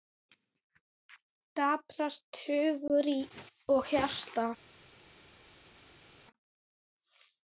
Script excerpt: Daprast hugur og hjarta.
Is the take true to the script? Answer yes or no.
yes